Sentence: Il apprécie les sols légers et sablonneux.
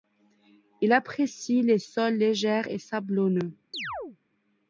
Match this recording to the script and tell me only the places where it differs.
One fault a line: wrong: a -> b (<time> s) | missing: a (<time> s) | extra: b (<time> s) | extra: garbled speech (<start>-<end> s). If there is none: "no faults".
no faults